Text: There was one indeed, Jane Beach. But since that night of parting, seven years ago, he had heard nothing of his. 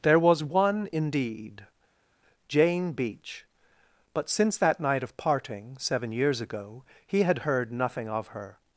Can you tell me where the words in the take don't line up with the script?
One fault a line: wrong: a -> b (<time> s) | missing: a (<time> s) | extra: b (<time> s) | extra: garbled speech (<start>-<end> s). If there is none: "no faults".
wrong: his -> her (8.3 s)